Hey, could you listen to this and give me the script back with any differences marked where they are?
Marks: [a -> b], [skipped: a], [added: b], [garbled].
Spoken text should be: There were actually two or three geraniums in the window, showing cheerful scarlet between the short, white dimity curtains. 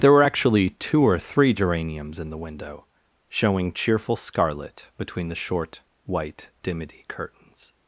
There were actually two or three geraniums in the window, showing cheerful scarlet between the short, white dimity curtains.